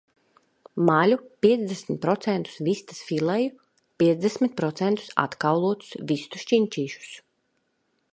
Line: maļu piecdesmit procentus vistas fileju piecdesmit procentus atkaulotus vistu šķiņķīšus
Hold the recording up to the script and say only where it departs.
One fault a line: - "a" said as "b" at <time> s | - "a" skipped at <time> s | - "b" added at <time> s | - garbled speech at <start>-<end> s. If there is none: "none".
none